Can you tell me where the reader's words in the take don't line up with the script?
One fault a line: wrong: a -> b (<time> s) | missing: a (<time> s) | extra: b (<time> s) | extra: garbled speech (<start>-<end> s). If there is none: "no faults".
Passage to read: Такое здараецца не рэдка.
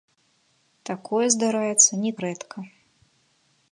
no faults